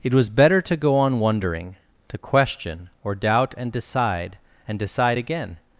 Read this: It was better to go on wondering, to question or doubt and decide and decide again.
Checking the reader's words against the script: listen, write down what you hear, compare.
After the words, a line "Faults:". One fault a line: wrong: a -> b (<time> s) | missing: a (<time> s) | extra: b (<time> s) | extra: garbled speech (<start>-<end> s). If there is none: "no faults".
It was better to go on wondering, to question or doubt and decide and decide again.
Faults:
no faults